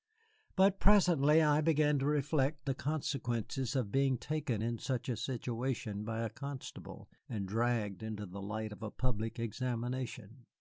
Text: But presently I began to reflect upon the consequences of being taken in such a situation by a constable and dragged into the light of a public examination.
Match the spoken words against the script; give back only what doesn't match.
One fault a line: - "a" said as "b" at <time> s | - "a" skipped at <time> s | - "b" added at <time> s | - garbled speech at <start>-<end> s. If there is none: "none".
- "upon" skipped at 2.7 s